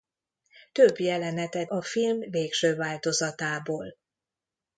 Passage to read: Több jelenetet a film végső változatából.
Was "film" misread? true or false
false